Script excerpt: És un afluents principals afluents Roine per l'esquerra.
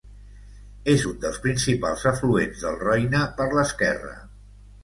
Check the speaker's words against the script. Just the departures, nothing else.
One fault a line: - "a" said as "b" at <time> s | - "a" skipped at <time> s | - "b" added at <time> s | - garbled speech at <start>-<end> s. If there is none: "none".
- "afluents" said as "dels" at 1.2 s
- "del" added at 2.7 s